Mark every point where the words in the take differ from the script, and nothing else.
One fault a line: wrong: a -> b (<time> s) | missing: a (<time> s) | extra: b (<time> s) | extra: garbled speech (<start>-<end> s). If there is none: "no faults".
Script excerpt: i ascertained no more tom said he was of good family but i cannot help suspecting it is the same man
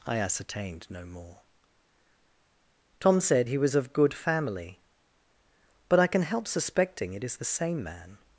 wrong: cannot -> can (6.1 s)